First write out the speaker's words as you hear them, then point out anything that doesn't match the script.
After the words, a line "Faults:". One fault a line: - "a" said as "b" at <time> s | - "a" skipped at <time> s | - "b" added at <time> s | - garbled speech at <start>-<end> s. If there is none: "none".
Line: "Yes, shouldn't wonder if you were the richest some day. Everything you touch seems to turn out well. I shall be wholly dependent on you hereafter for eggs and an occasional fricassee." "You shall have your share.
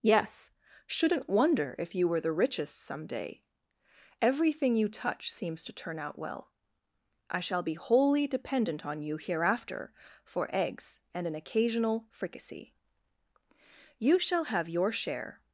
"Yes, shouldn't wonder if you were the richest some day. Everything you touch seems to turn out well. I shall be wholly dependent on you hereafter for eggs and an occasional fricassee." "You shall have your share.
Faults:
none